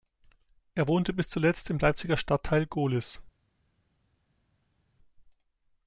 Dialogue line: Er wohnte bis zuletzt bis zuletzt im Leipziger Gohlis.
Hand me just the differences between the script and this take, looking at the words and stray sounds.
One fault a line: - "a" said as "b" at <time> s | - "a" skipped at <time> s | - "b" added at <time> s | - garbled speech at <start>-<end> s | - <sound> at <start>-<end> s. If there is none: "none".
- "bis zuletzt" skipped at 1.7 s
- "Stadtteil" added at 2.2 s